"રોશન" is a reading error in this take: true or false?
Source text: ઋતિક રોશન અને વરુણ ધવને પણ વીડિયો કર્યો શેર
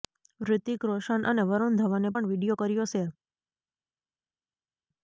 false